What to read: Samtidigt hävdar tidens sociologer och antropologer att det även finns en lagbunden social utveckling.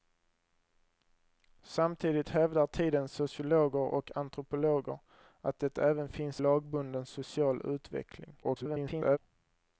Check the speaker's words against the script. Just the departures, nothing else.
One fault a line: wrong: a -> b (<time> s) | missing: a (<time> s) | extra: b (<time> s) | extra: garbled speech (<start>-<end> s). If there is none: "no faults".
missing: en (6.4 s)
extra: garbled speech (8.4-9.2 s)